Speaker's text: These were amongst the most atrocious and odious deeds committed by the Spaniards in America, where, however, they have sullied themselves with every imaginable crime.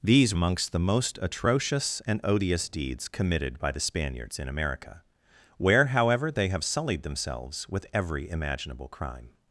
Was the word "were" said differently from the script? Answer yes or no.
yes